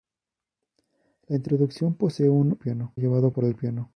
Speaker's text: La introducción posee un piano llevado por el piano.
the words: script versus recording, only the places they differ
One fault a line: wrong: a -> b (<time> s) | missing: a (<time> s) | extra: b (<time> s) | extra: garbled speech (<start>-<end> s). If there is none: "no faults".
no faults